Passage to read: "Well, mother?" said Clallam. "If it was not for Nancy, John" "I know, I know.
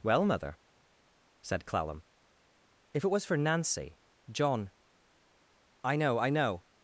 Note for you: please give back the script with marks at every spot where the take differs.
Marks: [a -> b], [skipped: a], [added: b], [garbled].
"Well, mother?" said Clallam. "If it was [skipped: not] for Nancy, John" "I know, I know.